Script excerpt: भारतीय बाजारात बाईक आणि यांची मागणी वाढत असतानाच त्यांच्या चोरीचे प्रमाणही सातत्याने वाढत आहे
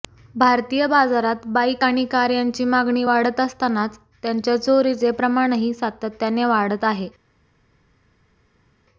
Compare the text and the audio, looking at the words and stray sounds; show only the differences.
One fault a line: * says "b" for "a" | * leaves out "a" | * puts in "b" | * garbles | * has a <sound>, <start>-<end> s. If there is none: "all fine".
* puts in "कार"